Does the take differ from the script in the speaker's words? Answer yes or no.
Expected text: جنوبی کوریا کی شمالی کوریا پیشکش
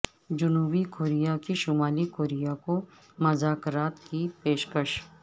yes